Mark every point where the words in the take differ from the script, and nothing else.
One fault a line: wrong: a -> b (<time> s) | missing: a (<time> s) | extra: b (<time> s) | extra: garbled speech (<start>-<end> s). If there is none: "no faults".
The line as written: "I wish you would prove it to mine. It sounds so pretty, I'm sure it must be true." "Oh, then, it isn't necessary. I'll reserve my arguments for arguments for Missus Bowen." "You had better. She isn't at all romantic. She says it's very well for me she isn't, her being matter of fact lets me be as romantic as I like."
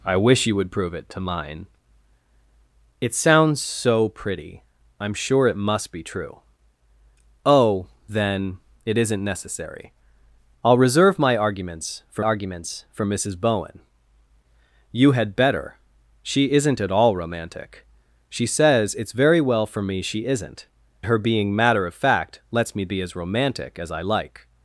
no faults